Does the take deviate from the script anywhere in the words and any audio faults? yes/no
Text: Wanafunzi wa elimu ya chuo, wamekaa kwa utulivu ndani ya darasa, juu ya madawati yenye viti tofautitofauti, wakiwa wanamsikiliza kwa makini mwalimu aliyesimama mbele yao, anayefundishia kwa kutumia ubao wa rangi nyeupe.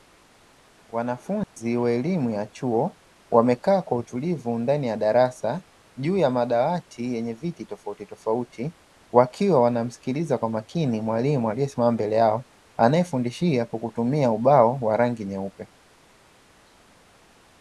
yes